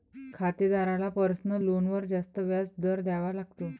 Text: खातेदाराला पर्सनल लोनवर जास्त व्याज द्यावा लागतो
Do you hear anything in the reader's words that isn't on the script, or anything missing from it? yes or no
yes